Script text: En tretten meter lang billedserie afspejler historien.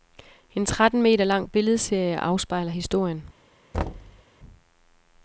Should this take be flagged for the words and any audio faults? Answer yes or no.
yes